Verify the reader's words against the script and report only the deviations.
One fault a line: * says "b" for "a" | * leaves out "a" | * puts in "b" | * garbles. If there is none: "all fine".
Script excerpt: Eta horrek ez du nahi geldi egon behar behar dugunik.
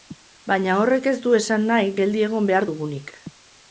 * says "Baina" for "Eta"
* puts in "esan"
* leaves out "behar"